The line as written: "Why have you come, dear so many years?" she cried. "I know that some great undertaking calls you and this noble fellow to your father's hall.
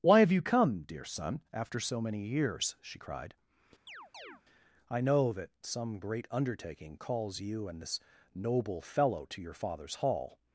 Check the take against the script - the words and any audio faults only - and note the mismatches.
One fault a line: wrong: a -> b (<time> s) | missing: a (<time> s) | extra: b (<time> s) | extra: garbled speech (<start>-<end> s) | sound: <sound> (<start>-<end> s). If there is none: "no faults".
extra: son after (1.0 s)
sound: chirp (3.9-4.4 s)